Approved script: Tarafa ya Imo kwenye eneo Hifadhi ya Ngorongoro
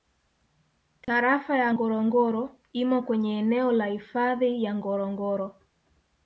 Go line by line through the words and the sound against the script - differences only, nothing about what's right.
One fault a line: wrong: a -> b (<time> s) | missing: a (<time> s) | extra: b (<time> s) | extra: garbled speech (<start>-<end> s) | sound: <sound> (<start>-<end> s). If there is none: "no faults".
sound: dropout (1.0-1.1 s)
extra: Ngorongoro (1.7 s)
extra: la (3.7 s)